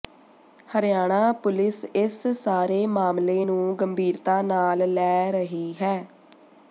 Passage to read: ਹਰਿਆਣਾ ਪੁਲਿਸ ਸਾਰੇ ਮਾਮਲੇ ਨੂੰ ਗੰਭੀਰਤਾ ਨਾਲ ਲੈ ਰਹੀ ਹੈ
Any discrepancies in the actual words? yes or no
yes